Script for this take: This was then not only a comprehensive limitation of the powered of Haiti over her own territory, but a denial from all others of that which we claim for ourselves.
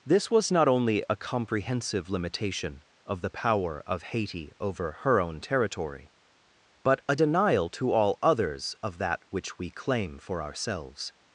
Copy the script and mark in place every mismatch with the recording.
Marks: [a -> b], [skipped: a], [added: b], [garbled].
This was [skipped: then] not only a comprehensive limitation of the [powered -> power] of Haiti over her own territory, but a denial [from -> to] all others of that which we claim for ourselves.